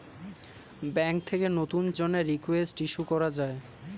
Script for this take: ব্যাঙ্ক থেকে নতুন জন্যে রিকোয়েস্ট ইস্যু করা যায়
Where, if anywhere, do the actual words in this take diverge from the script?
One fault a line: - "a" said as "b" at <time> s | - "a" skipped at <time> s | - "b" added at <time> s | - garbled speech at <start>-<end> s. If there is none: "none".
none